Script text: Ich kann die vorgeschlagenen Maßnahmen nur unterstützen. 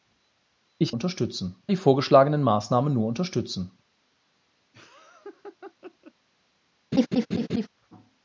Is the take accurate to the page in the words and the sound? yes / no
no